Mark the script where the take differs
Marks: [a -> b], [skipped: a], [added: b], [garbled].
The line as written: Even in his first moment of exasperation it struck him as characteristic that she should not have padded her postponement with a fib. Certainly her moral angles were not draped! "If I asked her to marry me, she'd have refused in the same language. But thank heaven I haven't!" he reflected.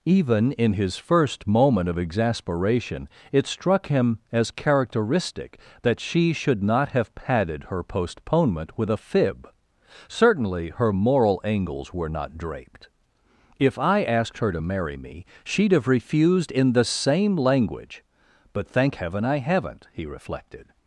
Even in his first moment of exasperation it struck him as characteristic that she should not have padded her postponement with a fib. Certainly her moral angles were not draped! "If I asked her to marry me, she'd have refused in the same language. But thank heaven I haven't!" he reflected.